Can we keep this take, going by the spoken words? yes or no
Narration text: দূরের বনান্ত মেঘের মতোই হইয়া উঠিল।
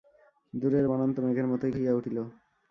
yes